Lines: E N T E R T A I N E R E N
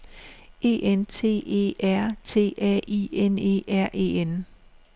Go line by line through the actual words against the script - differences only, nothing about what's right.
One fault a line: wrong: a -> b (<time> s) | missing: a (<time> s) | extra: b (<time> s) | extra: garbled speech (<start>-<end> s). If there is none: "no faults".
no faults